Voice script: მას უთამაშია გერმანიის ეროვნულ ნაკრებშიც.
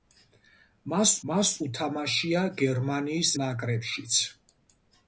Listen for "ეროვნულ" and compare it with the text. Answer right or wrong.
wrong